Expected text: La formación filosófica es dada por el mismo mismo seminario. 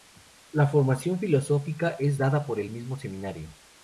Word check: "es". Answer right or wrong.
right